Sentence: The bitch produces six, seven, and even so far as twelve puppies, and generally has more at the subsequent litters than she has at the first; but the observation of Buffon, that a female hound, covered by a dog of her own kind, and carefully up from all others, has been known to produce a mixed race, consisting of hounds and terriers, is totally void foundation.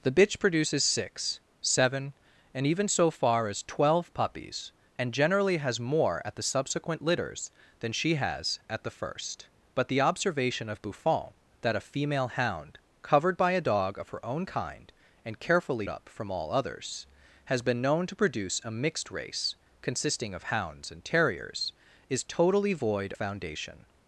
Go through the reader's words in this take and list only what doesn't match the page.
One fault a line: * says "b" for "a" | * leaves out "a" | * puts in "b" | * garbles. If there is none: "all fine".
all fine